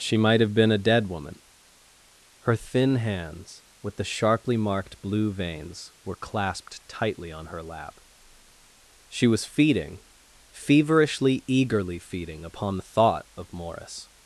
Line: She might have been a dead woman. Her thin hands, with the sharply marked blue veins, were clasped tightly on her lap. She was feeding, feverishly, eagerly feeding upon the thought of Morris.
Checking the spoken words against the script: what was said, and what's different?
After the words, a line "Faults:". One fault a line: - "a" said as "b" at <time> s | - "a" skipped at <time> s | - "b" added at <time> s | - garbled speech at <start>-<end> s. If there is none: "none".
She might have been a dead woman. Her thin hands, with the sharply marked blue veins, were clasped tightly on her lap. She was feeding, feverishly, eagerly feeding upon the thought of Morris.
Faults:
none